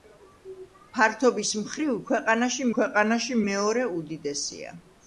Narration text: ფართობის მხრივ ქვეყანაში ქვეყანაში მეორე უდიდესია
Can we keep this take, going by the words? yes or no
yes